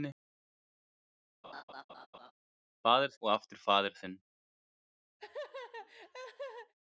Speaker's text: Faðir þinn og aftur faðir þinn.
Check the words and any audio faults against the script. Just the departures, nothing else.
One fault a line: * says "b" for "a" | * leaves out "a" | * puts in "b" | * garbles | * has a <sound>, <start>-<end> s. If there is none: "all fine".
* has a laugh, 1.4-2.3 s
* leaves out "þinn"
* has a laugh, 5.2-6.7 s